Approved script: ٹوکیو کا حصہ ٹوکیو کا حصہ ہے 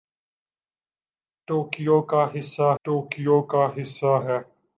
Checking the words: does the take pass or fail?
pass